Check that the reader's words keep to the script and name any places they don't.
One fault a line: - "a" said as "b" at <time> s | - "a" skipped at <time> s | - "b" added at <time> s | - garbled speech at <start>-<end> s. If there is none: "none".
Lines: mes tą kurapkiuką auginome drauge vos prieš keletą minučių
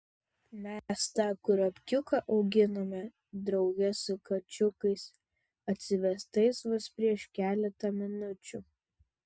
- "su kačiukais atsivestais" added at 4.0 s